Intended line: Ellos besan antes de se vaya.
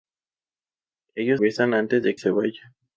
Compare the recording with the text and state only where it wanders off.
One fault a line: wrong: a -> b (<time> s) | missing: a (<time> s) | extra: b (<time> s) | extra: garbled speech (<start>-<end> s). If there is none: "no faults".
no faults